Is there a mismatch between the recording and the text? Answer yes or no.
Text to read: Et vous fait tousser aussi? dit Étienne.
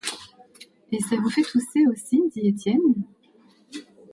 yes